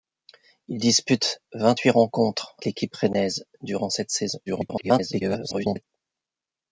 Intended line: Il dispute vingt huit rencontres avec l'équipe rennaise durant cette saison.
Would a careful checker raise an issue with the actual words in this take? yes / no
yes